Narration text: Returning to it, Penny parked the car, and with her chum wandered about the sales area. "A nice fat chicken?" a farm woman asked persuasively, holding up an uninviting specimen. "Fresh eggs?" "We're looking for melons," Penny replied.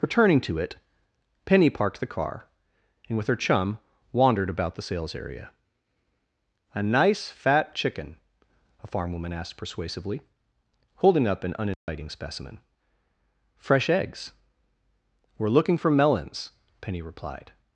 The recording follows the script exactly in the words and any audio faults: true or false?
false